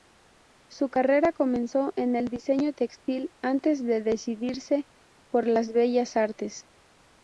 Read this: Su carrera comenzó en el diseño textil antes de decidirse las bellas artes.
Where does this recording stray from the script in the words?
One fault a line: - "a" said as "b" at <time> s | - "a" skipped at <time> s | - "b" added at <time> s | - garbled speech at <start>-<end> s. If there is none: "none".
- "por" added at 5.3 s